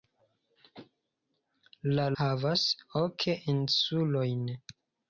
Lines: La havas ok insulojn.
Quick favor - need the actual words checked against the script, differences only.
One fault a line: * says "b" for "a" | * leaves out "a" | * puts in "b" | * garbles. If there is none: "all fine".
all fine